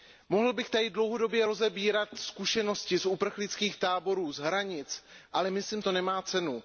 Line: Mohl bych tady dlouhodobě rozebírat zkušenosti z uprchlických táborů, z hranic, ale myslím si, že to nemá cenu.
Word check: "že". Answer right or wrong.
wrong